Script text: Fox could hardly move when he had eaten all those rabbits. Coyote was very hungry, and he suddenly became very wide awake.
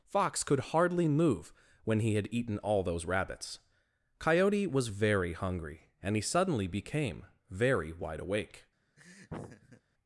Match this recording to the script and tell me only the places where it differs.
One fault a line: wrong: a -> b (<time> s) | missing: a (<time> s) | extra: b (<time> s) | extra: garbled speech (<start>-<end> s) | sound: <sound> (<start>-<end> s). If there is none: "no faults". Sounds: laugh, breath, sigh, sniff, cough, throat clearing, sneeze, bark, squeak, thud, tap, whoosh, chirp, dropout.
sound: laugh (9.0-9.8 s)